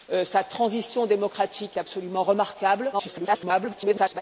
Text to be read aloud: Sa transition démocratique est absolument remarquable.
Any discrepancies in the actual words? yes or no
yes